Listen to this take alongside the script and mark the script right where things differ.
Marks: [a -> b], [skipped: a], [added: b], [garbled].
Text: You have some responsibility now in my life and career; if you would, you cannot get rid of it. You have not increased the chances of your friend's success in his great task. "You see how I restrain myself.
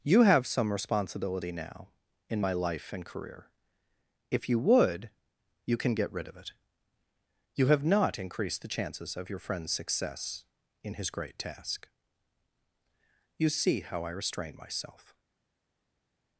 You have some responsibility now in my life and career; if you would, you [cannot -> can] get rid of it. You have not increased the chances of your friend's success in his great task. "You see how I restrain myself.